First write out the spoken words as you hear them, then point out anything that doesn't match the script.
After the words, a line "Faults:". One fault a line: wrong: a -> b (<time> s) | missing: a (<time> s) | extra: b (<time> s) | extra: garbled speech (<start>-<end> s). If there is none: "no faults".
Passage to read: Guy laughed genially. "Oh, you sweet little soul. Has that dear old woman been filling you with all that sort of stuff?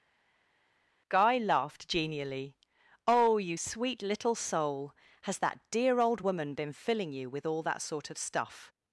Guy laughed genially. "Oh, you sweet little soul. Has that dear old woman been filling you with all that sort of stuff?
Faults:
no faults